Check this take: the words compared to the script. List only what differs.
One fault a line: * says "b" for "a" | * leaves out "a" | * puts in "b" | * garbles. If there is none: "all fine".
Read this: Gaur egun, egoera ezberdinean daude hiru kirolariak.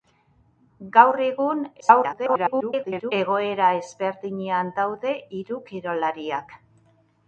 * garbles